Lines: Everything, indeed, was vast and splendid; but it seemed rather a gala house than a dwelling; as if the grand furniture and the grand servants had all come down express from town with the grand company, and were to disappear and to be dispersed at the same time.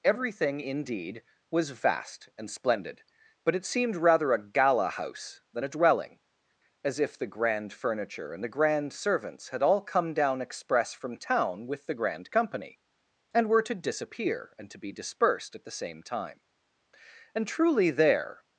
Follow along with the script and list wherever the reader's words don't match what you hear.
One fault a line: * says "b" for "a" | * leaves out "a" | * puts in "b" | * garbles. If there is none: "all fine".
* puts in "And truly there"